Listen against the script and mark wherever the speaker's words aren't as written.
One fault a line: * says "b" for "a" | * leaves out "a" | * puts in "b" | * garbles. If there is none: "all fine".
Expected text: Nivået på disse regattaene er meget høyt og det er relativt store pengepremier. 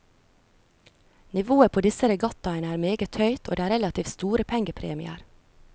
all fine